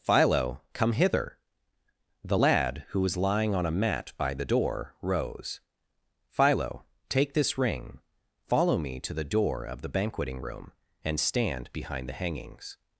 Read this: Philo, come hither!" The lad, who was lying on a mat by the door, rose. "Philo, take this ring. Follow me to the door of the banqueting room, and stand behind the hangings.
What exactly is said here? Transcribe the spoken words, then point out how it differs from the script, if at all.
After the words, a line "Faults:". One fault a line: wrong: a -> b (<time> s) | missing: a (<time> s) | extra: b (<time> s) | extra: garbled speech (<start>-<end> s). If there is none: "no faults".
Philo, come hither!" The lad, who was lying on a mat by the door, rose. "Philo, take this ring. Follow me to the door of the banqueting room, and stand behind the hangings.
Faults:
no faults